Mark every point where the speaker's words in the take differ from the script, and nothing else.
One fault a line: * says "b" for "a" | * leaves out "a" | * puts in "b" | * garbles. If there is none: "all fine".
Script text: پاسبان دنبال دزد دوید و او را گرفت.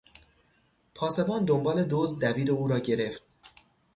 all fine